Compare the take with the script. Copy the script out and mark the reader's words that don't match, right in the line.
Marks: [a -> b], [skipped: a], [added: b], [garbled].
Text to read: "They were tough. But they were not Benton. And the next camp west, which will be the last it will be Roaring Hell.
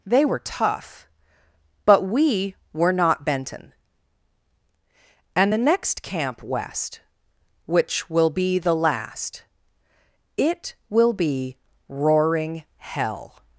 "They were tough. But [they -> we] were not Benton. And the next camp west, which will be the last it will be Roaring Hell.